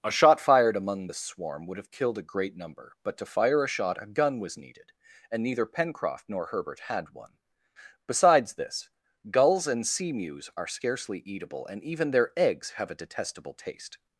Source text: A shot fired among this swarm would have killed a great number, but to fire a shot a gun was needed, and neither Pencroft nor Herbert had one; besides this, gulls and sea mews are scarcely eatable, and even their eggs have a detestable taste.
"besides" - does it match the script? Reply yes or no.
yes